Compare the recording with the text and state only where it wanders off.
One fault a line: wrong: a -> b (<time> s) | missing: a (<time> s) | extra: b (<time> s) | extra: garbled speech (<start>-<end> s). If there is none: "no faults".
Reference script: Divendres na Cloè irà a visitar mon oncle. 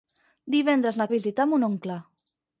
missing: Cloè irà (1.1 s)